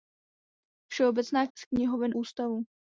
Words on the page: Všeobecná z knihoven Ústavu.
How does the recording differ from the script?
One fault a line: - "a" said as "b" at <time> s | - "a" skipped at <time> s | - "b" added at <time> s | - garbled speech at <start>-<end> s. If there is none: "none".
none